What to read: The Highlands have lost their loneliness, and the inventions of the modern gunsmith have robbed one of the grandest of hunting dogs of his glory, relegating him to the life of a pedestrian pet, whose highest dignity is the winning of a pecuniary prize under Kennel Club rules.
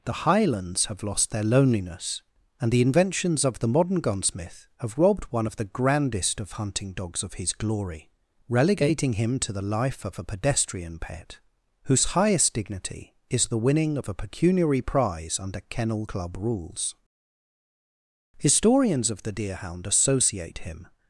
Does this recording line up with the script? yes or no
no